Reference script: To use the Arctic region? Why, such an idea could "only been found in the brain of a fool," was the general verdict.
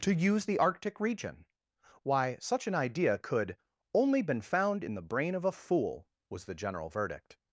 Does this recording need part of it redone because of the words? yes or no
no